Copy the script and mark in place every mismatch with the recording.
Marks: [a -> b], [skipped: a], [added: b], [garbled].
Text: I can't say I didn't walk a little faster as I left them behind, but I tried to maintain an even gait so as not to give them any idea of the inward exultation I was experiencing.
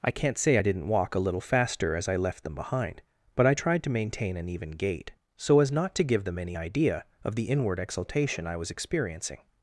I can't say I didn't walk a little faster as I left them behind, but I tried to maintain an even gait so as not to give them any idea of the inward exultation I was experiencing.